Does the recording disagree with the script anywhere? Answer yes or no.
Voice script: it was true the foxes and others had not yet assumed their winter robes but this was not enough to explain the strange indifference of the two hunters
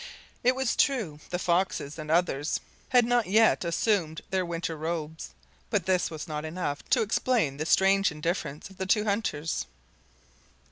no